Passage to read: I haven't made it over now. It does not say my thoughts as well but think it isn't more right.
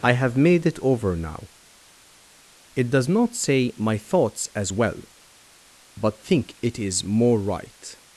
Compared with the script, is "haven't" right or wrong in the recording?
wrong